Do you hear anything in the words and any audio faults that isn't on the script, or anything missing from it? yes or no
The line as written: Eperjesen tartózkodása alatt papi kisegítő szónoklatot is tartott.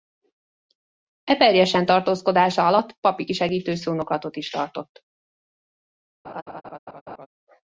yes